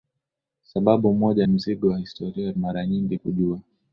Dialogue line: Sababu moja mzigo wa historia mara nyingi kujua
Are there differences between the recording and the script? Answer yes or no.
no